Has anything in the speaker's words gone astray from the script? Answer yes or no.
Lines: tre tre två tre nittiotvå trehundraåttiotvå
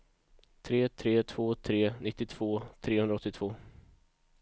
no